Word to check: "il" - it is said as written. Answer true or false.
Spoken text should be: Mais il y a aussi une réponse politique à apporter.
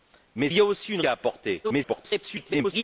false